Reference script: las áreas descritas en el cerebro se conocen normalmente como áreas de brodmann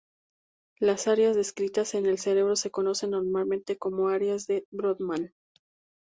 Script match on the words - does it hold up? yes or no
yes